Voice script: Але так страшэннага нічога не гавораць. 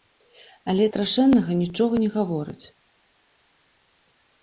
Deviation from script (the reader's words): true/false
true